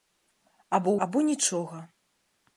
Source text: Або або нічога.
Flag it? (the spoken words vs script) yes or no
no